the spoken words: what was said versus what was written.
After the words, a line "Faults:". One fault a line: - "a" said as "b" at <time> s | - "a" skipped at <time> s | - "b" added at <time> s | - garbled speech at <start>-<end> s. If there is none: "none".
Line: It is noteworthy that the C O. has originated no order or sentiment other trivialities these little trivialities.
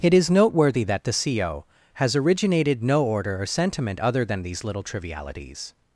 It is noteworthy that the C O. has originated no order or sentiment other than these little trivialities.
Faults:
- "trivialities" said as "than" at 4.2 s